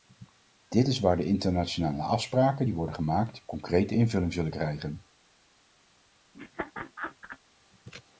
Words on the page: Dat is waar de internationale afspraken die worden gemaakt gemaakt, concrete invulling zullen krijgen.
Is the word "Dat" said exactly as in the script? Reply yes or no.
no